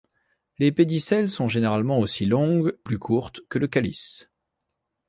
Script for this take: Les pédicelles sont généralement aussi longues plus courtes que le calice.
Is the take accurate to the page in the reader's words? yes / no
yes